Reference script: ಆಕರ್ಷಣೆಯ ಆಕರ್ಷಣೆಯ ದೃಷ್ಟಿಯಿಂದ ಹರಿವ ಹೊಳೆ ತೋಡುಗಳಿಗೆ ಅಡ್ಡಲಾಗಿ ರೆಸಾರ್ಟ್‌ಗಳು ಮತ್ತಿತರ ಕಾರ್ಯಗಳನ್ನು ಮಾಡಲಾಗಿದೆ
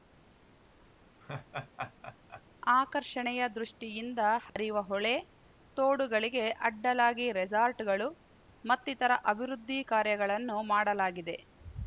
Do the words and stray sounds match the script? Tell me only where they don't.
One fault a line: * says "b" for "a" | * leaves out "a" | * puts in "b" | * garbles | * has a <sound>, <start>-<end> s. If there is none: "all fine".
* has a laugh, 1.2-2.4 s
* leaves out "ಆಕರ್ಷಣೆಯ"
* has a dropout, 4.5-4.6 s
* puts in "ಅಭಿವೃದ್ಧಿ"